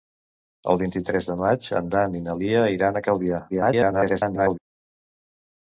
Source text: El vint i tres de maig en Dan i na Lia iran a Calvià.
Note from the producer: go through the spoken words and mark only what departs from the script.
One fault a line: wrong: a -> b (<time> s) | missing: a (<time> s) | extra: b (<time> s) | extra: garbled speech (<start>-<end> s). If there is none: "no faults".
extra: garbled speech (3.5-4.6 s)